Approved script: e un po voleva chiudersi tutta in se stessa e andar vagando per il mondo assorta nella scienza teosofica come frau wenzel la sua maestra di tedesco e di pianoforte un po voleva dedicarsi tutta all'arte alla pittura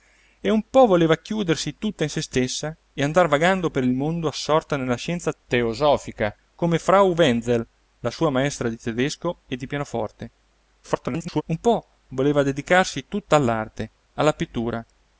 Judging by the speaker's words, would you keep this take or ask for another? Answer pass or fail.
fail